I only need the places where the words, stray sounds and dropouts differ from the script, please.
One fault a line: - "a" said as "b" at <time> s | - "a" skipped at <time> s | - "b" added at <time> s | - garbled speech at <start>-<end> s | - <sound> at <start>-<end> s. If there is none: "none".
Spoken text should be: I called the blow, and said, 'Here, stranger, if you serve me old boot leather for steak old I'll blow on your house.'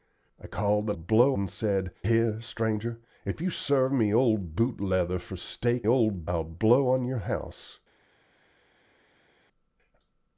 none